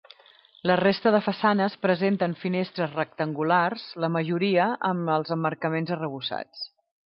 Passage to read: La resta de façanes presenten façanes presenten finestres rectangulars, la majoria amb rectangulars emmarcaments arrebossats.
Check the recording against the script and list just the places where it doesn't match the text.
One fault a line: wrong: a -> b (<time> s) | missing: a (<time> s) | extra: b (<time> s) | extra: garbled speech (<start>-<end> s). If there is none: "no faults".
missing: façanes presenten (2.4 s)
wrong: rectangulars -> els (5.2 s)